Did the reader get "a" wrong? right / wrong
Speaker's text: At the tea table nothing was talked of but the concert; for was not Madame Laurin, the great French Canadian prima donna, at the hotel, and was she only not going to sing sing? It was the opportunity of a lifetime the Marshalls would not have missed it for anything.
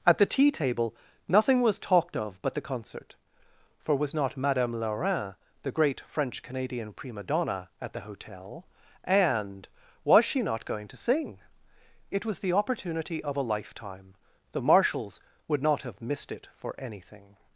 right